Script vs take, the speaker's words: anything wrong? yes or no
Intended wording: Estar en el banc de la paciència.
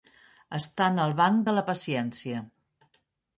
no